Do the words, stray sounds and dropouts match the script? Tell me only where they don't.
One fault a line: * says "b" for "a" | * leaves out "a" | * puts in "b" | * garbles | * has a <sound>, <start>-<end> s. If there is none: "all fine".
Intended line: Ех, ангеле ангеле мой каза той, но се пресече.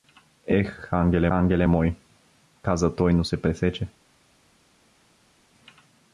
all fine